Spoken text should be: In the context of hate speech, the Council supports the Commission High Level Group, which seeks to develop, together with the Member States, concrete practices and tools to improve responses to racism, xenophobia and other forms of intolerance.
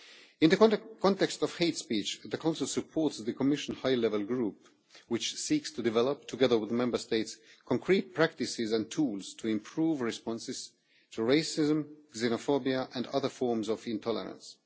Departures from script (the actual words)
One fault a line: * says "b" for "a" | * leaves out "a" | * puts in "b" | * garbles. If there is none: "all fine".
all fine